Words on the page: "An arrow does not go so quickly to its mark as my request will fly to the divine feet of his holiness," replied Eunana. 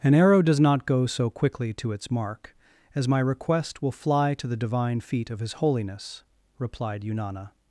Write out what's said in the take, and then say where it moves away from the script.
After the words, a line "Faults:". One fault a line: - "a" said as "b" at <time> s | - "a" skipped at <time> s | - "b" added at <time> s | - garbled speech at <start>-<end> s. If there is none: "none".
"An arrow does not go so quickly to its mark as my request will fly to the divine feet of his holiness," replied Eunana.
Faults:
none